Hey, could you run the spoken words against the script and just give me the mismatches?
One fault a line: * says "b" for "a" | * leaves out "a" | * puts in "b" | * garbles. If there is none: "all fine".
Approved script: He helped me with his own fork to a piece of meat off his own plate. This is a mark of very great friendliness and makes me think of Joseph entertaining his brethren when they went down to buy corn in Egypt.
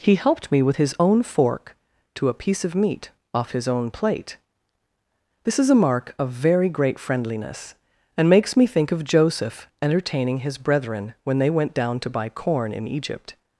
all fine